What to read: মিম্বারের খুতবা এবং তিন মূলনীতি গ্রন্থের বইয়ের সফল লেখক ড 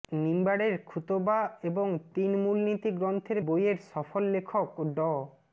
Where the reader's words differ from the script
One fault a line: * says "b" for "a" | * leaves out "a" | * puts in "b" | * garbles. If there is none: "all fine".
all fine